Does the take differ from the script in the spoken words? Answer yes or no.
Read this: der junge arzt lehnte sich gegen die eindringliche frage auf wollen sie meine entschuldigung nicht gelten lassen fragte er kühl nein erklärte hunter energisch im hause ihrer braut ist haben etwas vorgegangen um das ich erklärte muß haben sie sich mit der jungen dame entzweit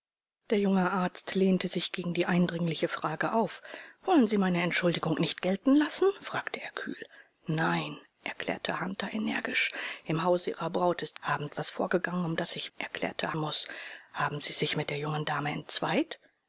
no